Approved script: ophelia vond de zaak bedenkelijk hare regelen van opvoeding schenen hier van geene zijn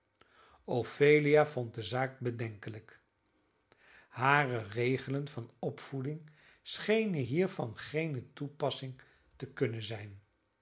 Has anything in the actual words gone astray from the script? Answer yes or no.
yes